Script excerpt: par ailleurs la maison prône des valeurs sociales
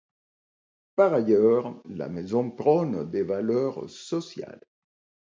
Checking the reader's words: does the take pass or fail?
pass